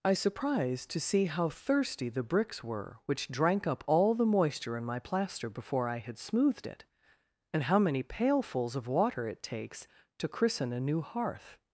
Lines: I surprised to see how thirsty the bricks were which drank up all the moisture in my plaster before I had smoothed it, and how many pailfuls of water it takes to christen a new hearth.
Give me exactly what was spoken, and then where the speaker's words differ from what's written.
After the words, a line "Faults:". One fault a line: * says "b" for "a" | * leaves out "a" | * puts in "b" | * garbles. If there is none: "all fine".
I surprised to see how thirsty the bricks were which drank up all the moisture in my plaster before I had smoothed it, and how many pailfuls of water it takes to christen a new hearth.
Faults:
all fine